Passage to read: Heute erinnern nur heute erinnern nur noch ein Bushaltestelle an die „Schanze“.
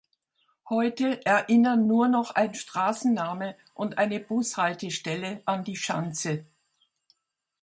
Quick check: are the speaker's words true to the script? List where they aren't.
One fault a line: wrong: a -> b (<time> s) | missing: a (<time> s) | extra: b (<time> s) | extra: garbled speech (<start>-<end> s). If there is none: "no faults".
wrong: heute erinnern nur noch ein -> noch ein Straßenname und eine (2.1 s)